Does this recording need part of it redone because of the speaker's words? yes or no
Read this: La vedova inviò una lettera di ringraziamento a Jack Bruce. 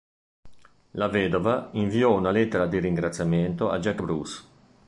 no